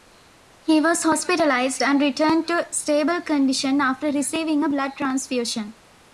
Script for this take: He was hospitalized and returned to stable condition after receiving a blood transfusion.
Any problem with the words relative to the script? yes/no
no